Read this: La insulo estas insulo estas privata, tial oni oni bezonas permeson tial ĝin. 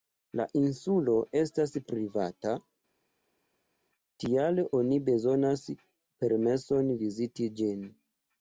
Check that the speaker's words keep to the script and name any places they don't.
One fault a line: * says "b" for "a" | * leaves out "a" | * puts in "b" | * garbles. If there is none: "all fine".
* leaves out "insulo estas"
* leaves out "oni"
* says "viziti" for "tial"